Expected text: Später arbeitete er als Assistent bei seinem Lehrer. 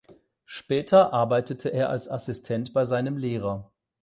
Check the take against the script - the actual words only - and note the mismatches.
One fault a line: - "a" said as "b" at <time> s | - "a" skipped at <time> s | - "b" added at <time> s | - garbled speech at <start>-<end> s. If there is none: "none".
none